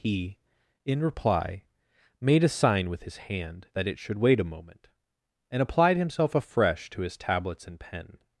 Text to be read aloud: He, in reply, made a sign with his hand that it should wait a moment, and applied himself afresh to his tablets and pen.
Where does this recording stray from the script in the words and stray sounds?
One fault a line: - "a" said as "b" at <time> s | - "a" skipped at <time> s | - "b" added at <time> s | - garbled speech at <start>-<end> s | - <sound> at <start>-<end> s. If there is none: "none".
none